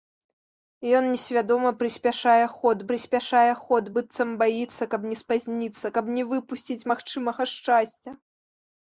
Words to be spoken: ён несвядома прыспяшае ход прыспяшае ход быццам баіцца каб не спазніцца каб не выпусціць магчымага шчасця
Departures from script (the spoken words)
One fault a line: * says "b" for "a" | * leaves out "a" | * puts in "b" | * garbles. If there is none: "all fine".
all fine